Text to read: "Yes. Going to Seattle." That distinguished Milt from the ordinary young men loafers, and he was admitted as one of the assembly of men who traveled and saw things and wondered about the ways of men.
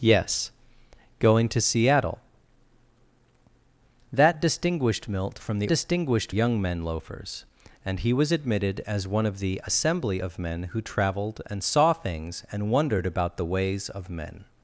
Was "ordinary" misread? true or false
true